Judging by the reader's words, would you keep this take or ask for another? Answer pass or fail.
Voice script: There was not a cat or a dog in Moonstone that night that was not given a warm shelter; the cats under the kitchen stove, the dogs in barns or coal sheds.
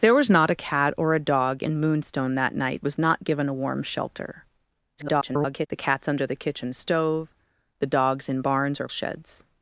fail